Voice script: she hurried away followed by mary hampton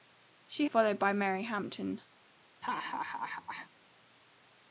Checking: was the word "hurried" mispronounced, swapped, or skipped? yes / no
yes